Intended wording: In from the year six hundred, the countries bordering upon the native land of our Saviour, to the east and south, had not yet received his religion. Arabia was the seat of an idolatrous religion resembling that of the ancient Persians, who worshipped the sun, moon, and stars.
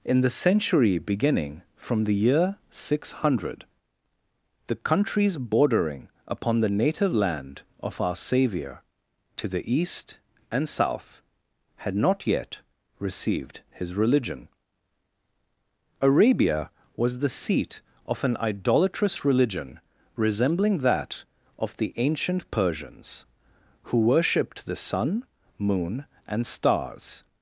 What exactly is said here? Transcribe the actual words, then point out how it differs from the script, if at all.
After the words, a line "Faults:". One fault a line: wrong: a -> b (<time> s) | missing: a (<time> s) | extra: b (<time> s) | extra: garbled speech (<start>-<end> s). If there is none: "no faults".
In the century beginning from the year six hundred, the countries bordering upon the native land of our Saviour, to the east and south, had not yet received his religion. Arabia was the seat of an idolatrous religion resembling that of the ancient Persians, who worshipped the sun, moon, and stars.
Faults:
extra: the century beginning (0.2 s)